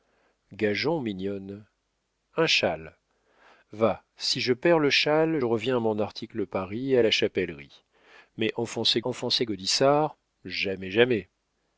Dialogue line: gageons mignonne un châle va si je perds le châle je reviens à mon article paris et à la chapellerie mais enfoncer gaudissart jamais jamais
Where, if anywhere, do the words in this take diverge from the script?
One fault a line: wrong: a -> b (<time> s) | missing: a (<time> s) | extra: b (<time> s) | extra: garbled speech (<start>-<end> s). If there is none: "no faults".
missing: je (5.4 s)
extra: enfoncer (9.0 s)